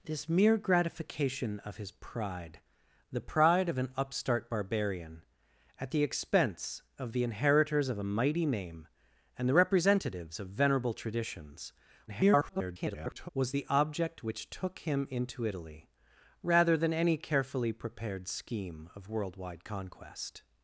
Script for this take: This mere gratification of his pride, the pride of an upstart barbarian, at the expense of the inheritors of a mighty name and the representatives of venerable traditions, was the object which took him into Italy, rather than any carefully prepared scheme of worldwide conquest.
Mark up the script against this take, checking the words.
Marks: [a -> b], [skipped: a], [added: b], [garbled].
This mere gratification of his pride, the pride of an upstart barbarian, at the expense of the inheritors of a mighty name and the representatives of venerable traditions, [garbled] was the object which took him into Italy, rather than any carefully prepared scheme of worldwide conquest.